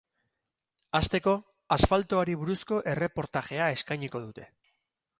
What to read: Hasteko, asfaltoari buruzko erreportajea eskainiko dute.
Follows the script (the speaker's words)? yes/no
yes